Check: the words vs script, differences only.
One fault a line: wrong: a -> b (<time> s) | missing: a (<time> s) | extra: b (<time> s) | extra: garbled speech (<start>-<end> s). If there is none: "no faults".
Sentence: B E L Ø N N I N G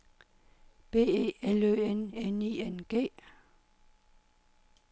no faults